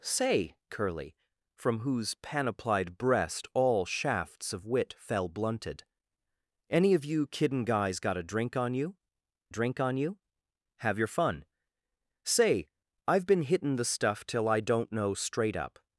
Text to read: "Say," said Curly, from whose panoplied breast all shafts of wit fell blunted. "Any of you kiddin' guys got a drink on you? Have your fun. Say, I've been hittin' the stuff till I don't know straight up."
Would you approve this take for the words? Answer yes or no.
no